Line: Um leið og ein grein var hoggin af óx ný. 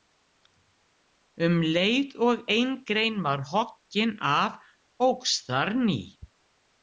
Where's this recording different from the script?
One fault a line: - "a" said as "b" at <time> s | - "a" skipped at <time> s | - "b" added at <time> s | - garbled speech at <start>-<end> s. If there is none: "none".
- "þar" added at 5.5 s